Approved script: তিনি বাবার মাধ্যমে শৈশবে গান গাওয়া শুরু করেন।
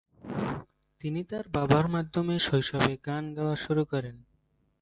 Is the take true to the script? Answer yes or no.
no